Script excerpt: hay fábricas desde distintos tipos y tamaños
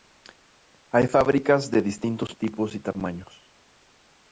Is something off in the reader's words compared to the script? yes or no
yes